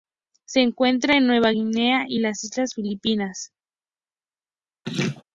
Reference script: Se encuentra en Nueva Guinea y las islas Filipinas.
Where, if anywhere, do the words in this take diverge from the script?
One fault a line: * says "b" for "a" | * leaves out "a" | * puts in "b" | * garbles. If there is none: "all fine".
all fine